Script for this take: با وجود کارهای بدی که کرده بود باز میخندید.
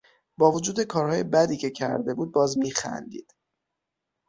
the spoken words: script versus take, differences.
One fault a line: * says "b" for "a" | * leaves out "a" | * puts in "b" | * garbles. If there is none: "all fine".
all fine